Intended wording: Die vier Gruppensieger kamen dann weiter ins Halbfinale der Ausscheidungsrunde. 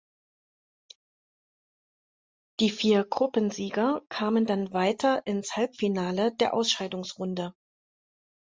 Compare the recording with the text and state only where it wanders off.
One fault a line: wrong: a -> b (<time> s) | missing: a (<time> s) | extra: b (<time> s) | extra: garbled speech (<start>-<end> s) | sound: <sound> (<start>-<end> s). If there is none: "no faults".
no faults